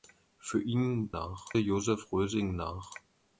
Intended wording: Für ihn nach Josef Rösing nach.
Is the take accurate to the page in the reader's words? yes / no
yes